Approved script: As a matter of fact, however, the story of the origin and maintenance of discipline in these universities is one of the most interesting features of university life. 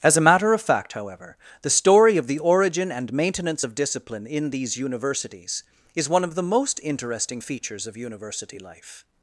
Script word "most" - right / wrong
right